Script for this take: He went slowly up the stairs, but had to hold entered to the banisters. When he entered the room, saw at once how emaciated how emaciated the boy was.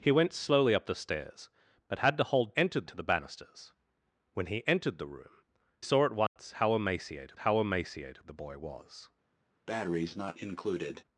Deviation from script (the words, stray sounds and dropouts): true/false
true